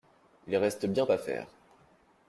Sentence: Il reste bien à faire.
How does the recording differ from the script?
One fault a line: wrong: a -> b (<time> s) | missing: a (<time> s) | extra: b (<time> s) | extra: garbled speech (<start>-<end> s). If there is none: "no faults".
no faults